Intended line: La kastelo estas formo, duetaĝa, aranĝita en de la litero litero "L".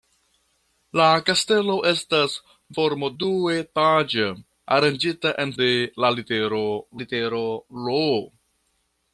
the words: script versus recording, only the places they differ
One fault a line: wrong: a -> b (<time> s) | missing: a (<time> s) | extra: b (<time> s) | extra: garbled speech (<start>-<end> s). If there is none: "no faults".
no faults